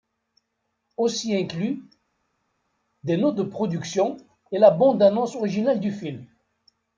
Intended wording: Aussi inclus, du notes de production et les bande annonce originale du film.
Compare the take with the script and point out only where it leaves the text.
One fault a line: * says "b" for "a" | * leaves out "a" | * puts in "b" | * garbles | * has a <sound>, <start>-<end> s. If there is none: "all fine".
* says "des" for "du"
* says "la" for "les"